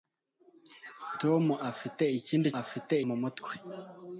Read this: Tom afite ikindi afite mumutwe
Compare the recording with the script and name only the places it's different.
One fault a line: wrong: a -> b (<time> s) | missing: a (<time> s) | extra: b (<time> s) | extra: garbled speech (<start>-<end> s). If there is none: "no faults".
no faults